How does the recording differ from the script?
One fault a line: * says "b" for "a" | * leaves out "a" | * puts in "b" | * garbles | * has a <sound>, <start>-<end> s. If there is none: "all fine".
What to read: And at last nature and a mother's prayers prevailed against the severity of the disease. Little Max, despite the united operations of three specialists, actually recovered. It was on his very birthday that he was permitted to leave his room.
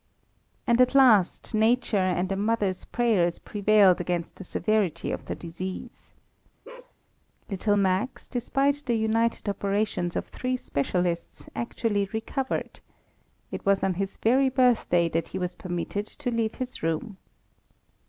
* has a bark, 6.6-6.9 s